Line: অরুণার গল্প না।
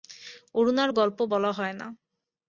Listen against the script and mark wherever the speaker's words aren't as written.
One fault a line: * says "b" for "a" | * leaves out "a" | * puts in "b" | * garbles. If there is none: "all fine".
* puts in "বলা হয়"